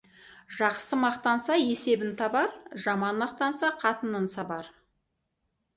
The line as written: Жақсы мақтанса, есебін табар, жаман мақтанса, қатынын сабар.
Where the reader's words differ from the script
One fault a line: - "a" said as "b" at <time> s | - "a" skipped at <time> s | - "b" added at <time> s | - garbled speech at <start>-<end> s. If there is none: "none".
none